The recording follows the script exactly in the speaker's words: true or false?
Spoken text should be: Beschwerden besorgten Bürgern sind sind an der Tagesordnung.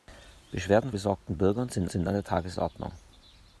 true